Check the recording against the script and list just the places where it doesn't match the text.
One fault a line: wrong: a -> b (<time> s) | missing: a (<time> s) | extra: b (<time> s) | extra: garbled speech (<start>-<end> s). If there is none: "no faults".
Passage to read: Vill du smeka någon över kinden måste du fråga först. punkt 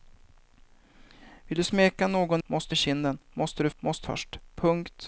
wrong: över -> måste (2.5 s)
wrong: fråga -> måste (3.8 s)